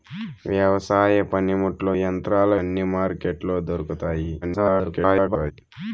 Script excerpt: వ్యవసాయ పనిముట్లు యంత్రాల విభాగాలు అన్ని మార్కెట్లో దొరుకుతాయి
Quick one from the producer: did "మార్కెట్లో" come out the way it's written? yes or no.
yes